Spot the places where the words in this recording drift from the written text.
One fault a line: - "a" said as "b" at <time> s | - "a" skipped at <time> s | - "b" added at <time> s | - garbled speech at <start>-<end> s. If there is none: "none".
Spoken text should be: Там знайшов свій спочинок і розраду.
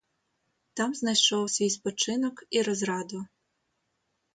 none